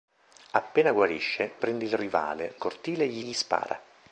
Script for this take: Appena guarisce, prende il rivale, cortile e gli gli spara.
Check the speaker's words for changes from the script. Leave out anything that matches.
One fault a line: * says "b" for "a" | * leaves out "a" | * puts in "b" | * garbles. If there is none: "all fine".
all fine